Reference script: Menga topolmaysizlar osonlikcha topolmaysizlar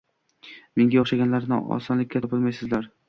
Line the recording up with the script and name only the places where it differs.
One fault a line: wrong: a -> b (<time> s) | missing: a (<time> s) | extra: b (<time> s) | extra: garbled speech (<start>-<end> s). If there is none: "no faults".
wrong: topolmaysizlar -> o‘xshaganlarni (1.0 s)